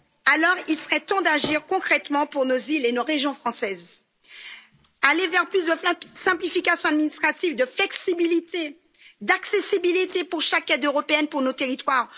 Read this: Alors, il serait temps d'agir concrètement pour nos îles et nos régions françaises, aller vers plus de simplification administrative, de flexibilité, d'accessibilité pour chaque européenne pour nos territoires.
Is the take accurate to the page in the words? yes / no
no